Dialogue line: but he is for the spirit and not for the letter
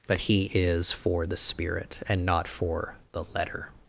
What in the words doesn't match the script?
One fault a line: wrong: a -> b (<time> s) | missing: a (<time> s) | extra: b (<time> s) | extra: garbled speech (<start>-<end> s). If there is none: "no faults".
no faults